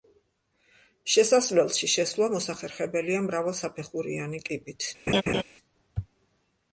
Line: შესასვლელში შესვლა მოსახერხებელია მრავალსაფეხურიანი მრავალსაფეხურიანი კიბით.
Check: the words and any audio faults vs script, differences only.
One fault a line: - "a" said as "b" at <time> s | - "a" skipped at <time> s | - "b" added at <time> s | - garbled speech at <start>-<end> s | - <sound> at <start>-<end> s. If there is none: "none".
- "მრავალსაფეხურიანი" skipped at 4.4 s
- laugh at 5.1-5.4 s